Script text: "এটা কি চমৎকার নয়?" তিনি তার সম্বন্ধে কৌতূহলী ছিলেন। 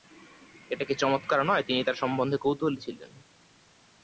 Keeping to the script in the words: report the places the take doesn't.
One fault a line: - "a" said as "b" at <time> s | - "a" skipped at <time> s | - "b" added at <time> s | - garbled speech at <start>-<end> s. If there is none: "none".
none